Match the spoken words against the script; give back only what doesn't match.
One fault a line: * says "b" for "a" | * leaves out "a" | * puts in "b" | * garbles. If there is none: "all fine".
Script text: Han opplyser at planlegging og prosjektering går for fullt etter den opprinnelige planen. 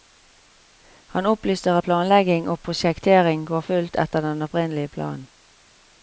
* leaves out "for"